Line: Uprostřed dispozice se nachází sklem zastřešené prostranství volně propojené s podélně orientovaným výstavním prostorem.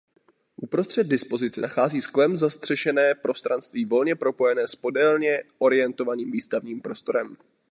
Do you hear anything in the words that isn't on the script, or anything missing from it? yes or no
yes